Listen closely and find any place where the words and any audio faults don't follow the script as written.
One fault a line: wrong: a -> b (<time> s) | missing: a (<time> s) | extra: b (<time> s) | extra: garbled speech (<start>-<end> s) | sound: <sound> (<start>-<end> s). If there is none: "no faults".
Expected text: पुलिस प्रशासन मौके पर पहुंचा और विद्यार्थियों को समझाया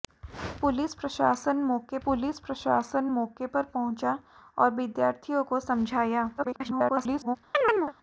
extra: पुलिस प्रशासन मौके (2.0 s)
extra: garbled speech (6.4-7.4 s)
sound: chirp (7.5-7.9 s)